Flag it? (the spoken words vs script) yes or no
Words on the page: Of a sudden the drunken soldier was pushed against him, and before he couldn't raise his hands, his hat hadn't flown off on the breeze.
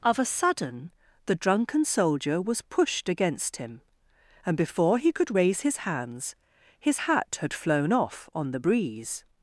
yes